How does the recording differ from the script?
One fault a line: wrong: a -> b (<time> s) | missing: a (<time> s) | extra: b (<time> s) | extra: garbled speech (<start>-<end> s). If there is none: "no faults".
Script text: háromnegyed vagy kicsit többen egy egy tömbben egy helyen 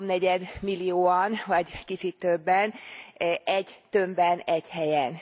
extra: millióan (0.6 s)
missing: egy (3.8 s)